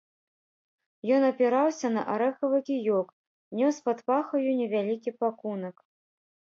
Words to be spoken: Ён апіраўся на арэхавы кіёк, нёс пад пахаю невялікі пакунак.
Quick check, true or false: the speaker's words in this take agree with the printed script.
true